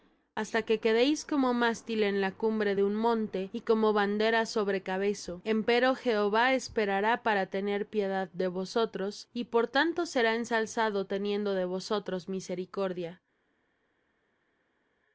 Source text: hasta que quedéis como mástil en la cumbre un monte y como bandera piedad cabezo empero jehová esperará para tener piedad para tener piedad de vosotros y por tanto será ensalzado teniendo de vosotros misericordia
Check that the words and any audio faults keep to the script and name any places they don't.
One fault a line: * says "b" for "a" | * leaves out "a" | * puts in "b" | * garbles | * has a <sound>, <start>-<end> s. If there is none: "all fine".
* puts in "de"
* says "sobre" for "piedad"
* leaves out "para tener piedad"